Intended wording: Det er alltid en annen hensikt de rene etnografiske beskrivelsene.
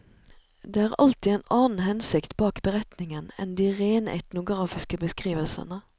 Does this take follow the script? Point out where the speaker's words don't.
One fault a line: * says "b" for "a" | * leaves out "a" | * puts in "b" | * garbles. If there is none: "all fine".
* puts in "bak beretningen enn"